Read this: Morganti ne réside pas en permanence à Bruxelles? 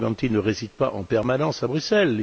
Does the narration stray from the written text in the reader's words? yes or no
no